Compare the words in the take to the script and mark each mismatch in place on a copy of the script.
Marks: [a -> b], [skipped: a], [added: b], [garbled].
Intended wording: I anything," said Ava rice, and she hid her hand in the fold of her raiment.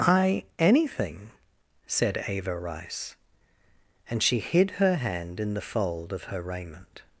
I anything," said Ava rice, and she hid her hand in the fold of her raiment.